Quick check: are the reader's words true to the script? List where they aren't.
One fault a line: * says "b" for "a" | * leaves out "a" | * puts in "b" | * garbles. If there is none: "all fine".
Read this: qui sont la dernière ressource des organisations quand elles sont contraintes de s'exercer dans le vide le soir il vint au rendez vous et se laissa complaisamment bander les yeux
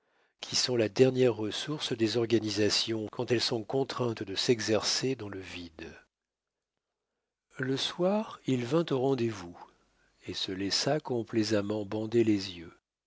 all fine